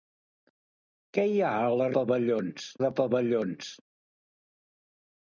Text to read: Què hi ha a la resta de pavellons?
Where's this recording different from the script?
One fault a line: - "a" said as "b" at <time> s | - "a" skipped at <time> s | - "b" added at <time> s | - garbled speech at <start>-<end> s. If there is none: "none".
- "resta" said as "pavellons" at 2.0 s